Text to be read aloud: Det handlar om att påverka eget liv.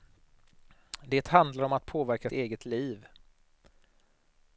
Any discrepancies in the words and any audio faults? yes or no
no